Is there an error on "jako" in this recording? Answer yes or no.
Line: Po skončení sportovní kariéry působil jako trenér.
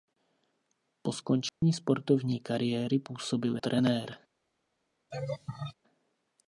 yes